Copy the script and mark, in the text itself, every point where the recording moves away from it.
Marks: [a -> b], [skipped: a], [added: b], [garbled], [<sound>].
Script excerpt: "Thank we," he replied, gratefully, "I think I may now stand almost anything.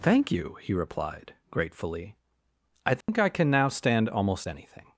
"Thank [we," -> you] he replied, gratefully, "I think [dropout] I [may -> can] now stand almost anything.